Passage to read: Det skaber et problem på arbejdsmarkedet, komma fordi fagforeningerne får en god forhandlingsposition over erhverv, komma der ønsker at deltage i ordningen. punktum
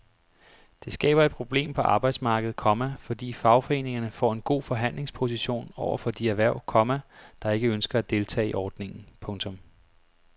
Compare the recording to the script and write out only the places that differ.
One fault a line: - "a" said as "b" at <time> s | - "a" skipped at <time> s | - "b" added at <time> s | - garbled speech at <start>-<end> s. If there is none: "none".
- "for de" added at 6.0 s
- "ikke" added at 7.5 s